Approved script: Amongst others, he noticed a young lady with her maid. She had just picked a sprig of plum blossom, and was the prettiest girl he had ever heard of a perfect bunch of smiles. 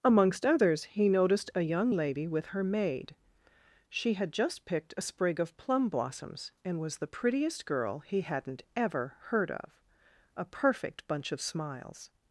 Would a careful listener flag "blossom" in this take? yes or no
yes